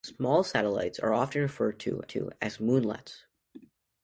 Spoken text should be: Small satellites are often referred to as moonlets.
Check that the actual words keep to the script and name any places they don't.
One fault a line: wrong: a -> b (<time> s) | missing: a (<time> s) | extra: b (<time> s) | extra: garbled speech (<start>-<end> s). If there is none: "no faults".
extra: to (2.1 s)